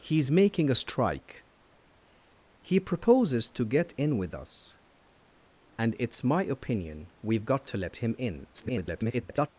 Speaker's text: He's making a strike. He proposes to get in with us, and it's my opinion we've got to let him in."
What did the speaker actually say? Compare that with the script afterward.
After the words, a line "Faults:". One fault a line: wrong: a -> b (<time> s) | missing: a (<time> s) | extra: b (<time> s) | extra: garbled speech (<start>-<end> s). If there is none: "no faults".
He's making a strike. He proposes to get in with us, and it's my opinion we've got to let him in." [garbled]
Faults:
extra: garbled speech (8.5-9.5 s)